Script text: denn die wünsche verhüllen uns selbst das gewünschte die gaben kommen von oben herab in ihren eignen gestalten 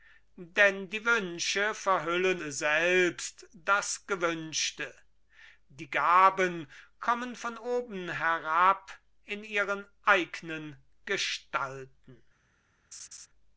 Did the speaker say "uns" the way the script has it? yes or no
no